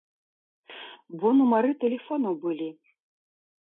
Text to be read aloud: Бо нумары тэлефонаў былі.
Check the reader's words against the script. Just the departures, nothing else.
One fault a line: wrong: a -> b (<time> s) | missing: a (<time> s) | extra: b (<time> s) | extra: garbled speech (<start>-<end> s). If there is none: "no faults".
no faults